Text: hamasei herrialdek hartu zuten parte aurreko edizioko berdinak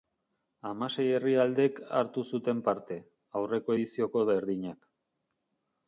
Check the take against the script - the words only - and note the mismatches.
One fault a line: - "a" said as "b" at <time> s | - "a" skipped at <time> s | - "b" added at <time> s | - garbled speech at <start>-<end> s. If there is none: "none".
none